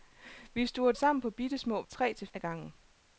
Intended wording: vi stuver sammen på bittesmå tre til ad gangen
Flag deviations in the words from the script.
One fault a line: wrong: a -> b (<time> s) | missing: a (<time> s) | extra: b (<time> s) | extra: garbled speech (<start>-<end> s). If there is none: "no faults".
no faults